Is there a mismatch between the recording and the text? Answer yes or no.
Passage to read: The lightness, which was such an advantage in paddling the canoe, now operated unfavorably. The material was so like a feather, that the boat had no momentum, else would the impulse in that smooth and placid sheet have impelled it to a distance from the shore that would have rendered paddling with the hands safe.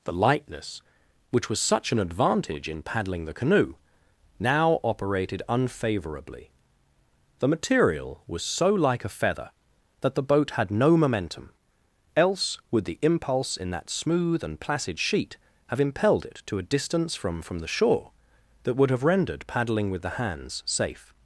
yes